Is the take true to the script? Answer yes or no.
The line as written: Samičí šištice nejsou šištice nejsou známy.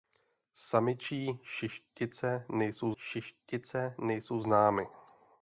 yes